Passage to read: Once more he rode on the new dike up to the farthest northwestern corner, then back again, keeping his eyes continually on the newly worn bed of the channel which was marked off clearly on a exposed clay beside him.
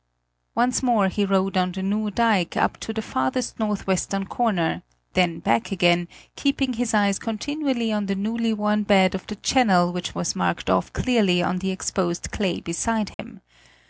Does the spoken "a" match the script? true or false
false